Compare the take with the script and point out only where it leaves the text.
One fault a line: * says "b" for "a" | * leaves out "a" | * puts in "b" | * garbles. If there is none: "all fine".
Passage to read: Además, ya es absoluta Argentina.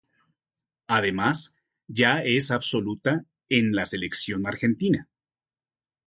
* puts in "en la Selección"